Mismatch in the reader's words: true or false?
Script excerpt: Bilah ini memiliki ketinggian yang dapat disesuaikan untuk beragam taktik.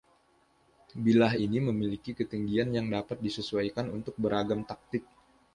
false